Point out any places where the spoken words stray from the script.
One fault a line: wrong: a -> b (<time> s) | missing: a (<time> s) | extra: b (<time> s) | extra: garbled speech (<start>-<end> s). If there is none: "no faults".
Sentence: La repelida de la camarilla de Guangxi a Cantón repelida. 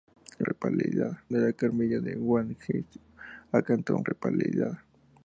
no faults